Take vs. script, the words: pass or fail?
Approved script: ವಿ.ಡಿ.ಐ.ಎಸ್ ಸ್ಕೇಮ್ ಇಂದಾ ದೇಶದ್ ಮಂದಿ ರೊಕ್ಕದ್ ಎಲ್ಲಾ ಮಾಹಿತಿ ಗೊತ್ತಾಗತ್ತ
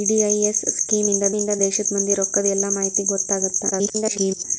fail